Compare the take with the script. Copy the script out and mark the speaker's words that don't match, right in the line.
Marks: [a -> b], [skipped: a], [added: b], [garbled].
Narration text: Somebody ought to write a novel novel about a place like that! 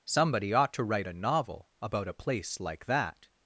Somebody ought to write a novel [skipped: novel] about a place like that!